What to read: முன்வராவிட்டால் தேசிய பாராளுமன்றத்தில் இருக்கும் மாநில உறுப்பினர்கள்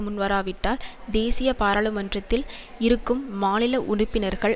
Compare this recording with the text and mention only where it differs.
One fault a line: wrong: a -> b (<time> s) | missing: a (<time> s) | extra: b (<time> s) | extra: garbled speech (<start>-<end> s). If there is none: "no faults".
no faults